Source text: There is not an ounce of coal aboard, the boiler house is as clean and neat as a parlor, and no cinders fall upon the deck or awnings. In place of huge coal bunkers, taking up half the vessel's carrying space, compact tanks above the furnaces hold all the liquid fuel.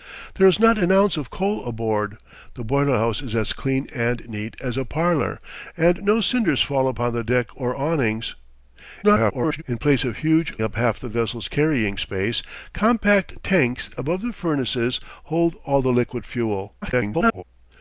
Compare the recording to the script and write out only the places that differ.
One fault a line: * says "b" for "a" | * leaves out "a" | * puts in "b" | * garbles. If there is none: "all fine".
* garbles
* leaves out "coal bunkers taking"
* garbles